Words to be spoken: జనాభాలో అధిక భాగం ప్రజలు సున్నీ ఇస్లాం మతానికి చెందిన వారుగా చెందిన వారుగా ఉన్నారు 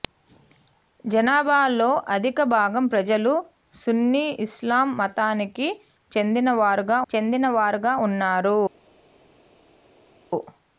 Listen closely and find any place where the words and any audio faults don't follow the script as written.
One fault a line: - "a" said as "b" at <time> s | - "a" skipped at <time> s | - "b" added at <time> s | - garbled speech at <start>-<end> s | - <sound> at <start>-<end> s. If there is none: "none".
none